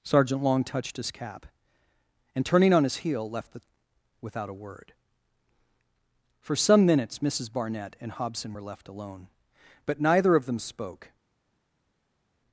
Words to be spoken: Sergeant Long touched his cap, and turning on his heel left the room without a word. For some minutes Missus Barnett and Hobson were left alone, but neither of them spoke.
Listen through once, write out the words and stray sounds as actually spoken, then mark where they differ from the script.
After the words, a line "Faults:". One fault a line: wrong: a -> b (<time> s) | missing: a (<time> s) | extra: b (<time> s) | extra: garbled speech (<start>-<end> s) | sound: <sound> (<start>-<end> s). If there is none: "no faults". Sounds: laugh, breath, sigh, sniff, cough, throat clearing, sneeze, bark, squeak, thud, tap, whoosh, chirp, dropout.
Sergeant Long touched his cap, and turning on his heel left the without a word. For some minutes Missus Barnett and Hobson were left alone, but neither of them spoke.
Faults:
missing: room (3.6 s)